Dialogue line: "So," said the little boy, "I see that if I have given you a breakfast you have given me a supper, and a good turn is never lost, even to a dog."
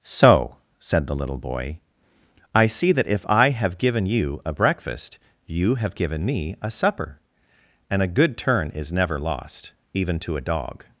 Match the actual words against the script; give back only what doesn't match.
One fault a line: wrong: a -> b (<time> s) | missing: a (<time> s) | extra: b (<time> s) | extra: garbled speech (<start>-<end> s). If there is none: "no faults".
no faults